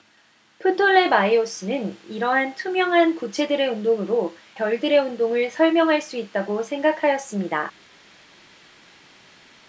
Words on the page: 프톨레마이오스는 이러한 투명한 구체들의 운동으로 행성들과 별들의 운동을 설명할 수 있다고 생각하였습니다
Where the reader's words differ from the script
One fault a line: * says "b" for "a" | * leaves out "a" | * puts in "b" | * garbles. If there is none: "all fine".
* leaves out "행성들과"